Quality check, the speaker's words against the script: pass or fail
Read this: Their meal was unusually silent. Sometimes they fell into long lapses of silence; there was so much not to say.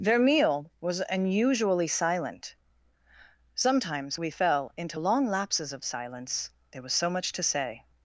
fail